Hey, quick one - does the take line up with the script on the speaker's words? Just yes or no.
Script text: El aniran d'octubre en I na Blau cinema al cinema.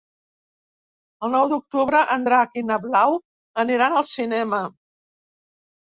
no